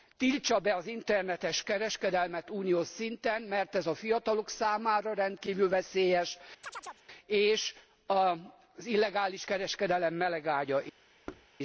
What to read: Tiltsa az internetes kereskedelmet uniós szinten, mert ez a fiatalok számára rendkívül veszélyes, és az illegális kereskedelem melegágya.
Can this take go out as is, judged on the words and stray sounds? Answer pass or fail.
fail